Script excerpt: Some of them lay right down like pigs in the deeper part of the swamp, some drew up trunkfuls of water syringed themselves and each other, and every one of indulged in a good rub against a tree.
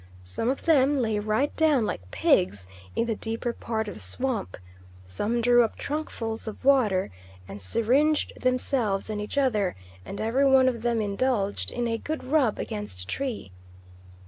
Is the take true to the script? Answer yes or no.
no